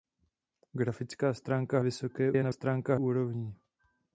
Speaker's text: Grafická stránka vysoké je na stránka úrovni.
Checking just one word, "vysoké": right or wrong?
right